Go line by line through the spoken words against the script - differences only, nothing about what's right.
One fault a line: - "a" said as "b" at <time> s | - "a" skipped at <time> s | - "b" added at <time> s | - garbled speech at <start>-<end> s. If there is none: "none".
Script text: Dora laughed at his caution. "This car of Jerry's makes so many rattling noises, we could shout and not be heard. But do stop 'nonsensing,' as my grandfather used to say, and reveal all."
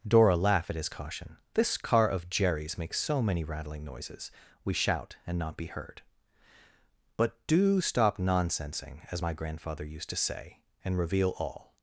- "laughed" said as "laugh" at 0.3 s
- "could" skipped at 4.7 s